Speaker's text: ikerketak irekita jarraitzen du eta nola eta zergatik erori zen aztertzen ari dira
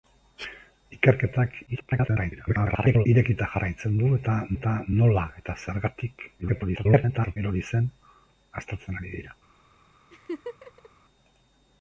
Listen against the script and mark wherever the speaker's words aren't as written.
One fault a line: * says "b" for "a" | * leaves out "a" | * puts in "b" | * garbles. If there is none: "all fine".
* garbles
* puts in "eta"
* garbles